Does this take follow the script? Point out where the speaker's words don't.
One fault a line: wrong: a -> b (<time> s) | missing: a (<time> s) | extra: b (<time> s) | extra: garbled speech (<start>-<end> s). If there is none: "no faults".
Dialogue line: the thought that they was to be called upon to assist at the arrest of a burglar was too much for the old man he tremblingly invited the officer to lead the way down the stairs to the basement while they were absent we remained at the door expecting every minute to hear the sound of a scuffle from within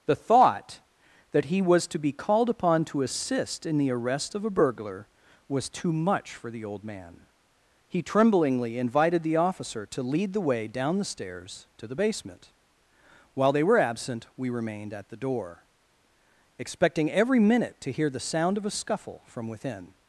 wrong: they -> he (1.4 s)
wrong: at -> in (3.6 s)